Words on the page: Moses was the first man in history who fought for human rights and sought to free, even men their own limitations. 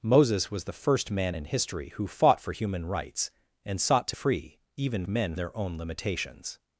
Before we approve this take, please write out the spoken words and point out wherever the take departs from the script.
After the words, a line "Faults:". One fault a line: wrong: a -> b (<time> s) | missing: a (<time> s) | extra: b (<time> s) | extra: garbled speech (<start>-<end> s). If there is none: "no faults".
Moses was the first man in history who fought for human rights and sought to free, even men their own limitations.
Faults:
no faults